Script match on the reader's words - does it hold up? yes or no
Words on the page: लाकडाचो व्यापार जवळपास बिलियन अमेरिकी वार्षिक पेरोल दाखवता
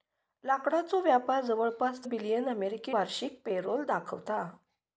yes